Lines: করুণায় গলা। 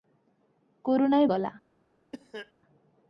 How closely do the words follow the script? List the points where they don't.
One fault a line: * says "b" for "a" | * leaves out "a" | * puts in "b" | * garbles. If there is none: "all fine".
all fine